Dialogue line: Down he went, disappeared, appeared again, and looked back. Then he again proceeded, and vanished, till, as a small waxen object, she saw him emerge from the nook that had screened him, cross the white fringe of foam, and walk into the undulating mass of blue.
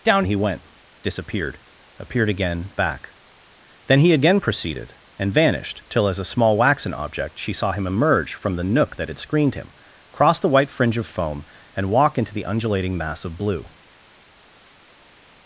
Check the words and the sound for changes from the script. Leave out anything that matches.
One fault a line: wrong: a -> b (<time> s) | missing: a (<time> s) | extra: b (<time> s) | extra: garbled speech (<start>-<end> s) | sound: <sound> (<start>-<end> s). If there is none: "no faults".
missing: and looked (2.7 s)